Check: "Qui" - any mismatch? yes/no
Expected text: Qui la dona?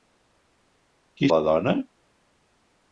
no